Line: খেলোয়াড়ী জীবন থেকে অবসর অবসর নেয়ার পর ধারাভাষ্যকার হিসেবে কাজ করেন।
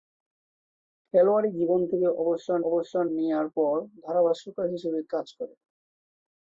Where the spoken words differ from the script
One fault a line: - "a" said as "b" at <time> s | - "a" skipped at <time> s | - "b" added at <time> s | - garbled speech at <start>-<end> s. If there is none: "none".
none